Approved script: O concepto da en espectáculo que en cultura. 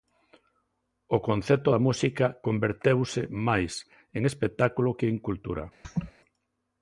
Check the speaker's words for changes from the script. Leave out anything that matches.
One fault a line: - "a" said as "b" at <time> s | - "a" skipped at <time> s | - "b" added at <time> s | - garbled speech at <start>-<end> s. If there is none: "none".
- "música converteuse máis" added at 1.9 s